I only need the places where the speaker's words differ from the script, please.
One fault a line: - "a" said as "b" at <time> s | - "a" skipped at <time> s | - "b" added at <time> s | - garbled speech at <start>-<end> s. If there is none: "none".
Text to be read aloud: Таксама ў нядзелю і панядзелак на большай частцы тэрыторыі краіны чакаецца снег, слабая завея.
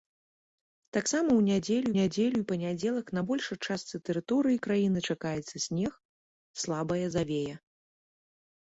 - "нядзелю" added at 2.0 s